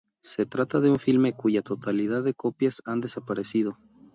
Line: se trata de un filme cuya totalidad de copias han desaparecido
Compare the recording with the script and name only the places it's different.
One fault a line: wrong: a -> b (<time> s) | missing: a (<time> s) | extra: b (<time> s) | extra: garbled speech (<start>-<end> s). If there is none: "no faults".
no faults